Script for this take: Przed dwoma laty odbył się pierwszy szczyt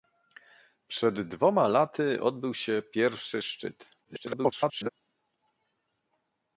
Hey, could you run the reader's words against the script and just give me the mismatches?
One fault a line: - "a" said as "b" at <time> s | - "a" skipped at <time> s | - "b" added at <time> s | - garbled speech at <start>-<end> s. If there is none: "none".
- garbled speech at 4.0-4.9 s